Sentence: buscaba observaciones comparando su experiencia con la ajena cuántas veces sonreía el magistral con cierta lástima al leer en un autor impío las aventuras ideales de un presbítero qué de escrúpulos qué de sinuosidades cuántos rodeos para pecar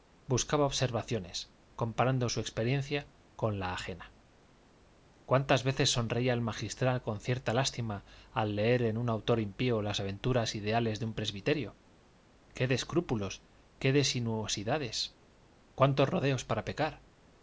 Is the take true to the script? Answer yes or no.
yes